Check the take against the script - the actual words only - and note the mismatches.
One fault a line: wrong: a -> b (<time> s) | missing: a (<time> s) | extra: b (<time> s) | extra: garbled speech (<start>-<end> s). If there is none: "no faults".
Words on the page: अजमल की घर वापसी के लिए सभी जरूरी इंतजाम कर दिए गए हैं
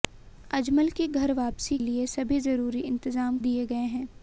missing: के (1.8 s)
missing: कर (3.4 s)